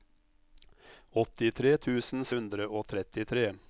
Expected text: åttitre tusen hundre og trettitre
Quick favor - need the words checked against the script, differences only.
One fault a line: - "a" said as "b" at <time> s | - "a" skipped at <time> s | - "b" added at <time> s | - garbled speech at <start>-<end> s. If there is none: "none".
none